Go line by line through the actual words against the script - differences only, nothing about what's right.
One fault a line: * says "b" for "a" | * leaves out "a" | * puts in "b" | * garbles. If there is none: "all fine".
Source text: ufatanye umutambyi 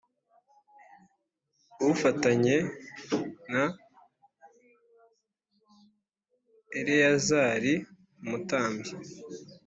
* puts in "na Eleyazari"